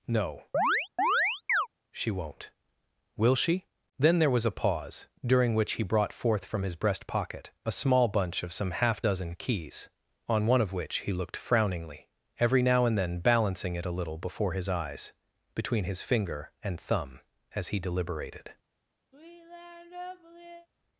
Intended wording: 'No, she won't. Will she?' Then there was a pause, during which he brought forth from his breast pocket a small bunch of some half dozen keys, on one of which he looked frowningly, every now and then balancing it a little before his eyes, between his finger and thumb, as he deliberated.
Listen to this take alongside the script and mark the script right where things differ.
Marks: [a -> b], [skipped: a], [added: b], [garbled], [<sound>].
'No, [chirp] she won't. Will she?' Then there was a pause, during which he brought forth from his breast pocket a small bunch of some half dozen keys, on one of which he looked frowningly, every now and then balancing it a little before his eyes, between his finger and thumb, as he deliberated. [sigh]